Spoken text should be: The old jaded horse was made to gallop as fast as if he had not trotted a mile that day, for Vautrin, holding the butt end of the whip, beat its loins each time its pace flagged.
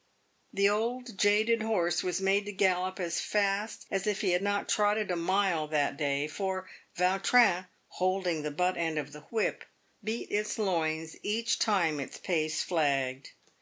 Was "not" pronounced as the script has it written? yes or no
yes